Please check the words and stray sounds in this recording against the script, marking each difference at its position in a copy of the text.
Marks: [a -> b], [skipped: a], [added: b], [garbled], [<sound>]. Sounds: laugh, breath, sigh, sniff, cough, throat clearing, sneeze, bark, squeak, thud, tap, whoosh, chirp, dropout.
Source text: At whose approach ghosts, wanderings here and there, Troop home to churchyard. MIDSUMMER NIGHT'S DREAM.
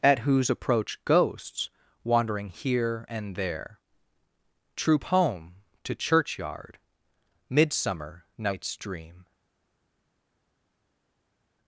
At whose approach ghosts, [wanderings -> wandering] here and there, Troop home to churchyard. MIDSUMMER NIGHT'S DREAM.